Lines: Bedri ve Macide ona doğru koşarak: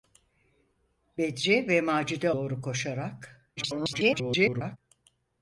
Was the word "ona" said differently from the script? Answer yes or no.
yes